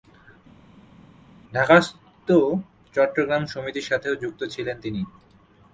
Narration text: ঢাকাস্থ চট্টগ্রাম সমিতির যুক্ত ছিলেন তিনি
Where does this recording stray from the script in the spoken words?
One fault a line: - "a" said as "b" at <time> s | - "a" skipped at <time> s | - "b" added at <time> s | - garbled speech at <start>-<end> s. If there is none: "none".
- "সাথেও" added at 3.9 s